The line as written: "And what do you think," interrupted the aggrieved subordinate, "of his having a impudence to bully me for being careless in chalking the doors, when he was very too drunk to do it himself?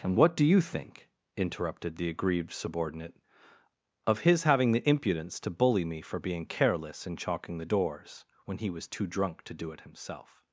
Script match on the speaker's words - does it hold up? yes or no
no